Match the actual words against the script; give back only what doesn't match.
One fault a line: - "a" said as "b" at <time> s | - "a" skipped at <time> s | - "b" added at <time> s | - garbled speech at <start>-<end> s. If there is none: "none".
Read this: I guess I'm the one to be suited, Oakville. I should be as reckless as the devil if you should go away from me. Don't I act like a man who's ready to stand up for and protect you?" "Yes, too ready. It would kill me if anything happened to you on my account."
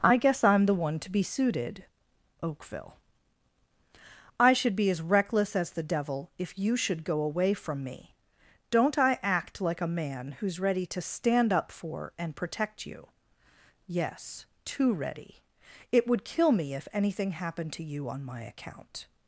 none